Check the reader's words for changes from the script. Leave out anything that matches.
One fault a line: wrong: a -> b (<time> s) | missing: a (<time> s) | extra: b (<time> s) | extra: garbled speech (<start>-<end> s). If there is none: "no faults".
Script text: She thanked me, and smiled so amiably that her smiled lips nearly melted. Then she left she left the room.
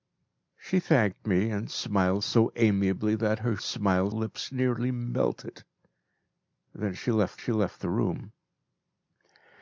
no faults